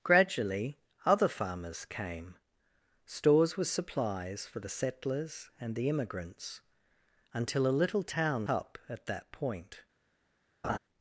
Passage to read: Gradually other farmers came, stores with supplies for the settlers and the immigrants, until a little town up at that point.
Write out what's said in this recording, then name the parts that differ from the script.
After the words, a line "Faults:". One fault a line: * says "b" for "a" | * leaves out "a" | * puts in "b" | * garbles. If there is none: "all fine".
Gradually other farmers came, stores with supplies for the settlers and the immigrants, until a little town up at that point.
Faults:
all fine